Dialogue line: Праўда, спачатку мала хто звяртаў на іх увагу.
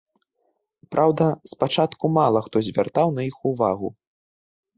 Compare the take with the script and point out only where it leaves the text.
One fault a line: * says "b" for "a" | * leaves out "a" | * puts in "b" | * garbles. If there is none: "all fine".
all fine